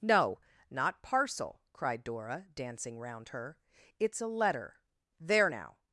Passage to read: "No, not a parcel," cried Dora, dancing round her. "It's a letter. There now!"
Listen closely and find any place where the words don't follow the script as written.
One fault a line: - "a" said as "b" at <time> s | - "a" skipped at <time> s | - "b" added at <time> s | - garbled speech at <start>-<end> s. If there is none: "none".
- "a" skipped at 1.0 s